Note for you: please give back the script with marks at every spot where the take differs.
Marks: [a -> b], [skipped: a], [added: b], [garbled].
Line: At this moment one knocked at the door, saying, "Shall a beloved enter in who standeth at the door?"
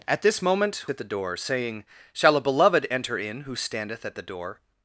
At this moment [skipped: one knocked] at the door, saying, "Shall a beloved enter in who standeth at the door?"